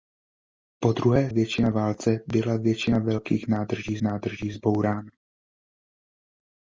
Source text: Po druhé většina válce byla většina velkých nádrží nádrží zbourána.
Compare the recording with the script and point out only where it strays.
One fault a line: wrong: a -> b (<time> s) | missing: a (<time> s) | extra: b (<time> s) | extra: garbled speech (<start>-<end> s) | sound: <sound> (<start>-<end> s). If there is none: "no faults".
no faults